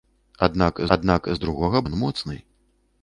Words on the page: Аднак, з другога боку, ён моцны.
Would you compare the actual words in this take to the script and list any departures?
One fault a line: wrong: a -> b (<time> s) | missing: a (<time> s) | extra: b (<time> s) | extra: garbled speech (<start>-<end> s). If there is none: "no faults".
extra: аднак (1.0 s)
missing: боку (1.8 s)